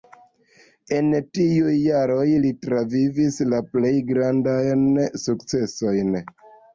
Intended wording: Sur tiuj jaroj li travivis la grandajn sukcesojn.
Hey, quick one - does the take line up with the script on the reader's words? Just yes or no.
no